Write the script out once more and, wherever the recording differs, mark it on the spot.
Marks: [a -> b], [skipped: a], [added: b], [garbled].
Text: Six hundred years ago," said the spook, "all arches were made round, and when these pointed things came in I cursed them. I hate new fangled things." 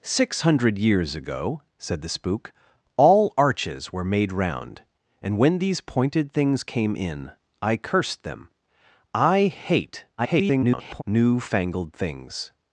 Six hundred years ago," said the spook, "all arches were made round, and when these pointed things came in I cursed them. I hate [garbled] new fangled things."